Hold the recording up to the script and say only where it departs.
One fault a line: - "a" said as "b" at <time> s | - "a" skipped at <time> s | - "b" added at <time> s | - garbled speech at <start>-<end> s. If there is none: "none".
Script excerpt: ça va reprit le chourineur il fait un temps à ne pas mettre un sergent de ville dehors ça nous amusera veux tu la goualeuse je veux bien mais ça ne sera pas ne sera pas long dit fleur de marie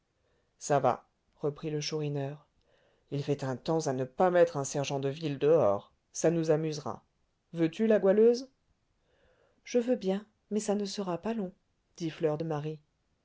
- "ne sera pas" skipped at 11.3 s